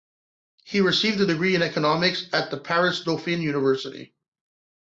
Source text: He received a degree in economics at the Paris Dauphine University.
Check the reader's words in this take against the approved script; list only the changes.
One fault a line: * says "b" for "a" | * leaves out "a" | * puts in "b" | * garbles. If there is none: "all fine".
all fine